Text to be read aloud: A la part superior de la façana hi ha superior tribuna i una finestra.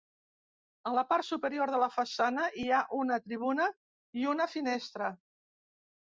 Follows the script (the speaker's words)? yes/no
no